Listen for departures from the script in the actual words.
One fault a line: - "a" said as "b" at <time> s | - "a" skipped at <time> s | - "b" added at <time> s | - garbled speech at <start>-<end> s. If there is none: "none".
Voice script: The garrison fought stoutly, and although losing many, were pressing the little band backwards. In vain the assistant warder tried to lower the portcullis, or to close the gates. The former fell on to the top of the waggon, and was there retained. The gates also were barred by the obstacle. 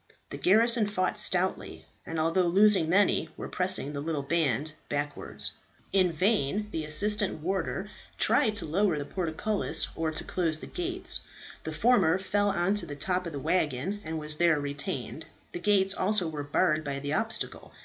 none